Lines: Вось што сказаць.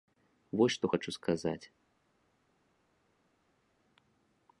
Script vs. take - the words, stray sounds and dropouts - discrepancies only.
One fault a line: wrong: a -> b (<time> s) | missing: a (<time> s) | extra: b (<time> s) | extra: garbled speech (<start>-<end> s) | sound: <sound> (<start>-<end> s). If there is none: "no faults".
extra: хачу (0.9 s)